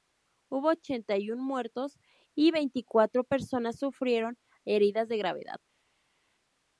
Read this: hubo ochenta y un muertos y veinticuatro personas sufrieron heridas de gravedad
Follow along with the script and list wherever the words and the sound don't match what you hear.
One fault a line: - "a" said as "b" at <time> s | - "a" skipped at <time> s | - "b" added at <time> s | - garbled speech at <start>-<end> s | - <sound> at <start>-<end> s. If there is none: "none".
none